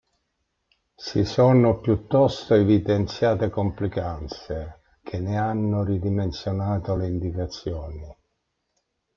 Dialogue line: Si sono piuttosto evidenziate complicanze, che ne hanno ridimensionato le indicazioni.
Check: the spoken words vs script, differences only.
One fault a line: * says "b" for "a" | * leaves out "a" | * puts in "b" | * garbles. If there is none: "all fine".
all fine